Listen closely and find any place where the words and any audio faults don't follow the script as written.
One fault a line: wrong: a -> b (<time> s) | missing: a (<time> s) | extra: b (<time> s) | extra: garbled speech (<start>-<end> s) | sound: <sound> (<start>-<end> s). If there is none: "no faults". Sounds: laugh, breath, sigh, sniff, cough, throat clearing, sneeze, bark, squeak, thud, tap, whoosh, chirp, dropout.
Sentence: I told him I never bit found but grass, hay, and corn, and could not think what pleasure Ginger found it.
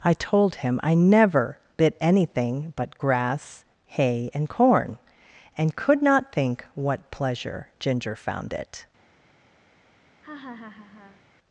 wrong: found -> anything (2.0 s)
sound: laugh (10.2-11.2 s)